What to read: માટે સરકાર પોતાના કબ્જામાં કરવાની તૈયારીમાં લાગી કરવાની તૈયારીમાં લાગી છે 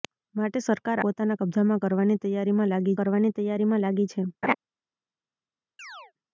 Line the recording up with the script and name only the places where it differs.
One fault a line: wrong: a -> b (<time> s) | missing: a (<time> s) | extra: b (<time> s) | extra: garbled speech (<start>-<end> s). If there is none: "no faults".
no faults